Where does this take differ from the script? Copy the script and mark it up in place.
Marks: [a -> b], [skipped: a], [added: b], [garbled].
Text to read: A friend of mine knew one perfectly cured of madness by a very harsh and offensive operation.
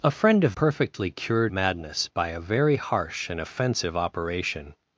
A friend of [skipped: mine knew one] perfectly cured [skipped: of] madness by a very harsh and offensive operation.